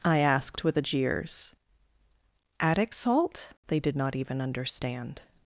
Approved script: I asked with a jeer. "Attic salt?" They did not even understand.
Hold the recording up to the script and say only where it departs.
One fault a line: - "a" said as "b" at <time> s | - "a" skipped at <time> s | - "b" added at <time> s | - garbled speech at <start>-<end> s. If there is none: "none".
- "jeer" said as "jeers" at 0.8 s